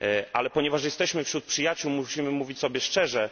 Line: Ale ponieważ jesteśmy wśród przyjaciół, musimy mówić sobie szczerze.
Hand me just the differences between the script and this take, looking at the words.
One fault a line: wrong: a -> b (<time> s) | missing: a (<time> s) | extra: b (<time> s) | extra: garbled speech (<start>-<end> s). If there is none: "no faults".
no faults